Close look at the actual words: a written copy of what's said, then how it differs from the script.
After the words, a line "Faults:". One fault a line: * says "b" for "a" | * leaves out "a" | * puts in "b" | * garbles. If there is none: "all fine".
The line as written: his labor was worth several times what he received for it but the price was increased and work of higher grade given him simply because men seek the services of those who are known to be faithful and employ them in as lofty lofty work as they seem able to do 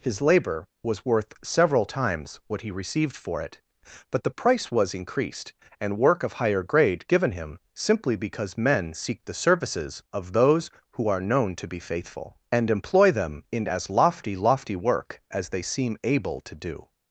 his labor was worth several times what he received for it but the price was increased and work of higher grade given him simply because men seek the services of those who are known to be faithful and employ them in as lofty lofty work as they seem able to do
Faults:
all fine